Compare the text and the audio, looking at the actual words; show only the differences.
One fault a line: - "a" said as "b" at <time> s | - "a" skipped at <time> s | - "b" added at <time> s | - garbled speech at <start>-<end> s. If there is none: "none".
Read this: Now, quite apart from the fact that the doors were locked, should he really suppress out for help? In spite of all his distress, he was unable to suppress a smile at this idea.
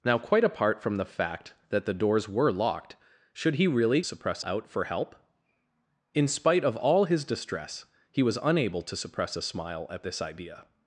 none